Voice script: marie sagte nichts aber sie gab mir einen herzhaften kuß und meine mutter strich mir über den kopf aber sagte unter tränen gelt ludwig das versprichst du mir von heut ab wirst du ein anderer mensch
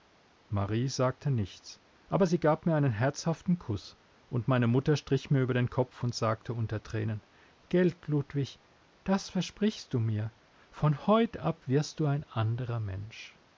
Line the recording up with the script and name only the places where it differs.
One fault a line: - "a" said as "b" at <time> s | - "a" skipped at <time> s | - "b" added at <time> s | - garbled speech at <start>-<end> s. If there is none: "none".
- "aber" said as "und" at 6.0 s